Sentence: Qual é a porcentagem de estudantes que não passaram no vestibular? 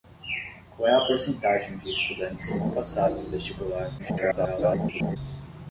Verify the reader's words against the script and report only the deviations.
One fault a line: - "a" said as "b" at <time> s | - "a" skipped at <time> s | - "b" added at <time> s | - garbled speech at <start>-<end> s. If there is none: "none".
- garbled speech at 4.0-5.2 s